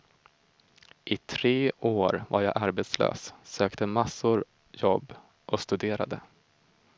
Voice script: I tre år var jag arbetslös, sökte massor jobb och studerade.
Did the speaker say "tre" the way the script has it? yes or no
yes